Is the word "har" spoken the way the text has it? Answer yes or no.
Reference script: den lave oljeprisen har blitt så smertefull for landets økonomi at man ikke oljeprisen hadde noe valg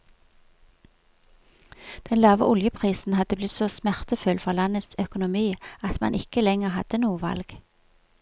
no